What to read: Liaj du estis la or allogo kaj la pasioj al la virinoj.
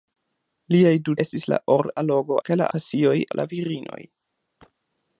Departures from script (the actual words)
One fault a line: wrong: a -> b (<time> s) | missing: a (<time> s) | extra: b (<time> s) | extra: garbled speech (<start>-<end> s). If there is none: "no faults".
no faults